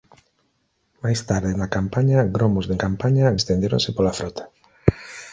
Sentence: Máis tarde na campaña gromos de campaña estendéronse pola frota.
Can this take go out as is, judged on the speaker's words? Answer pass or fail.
pass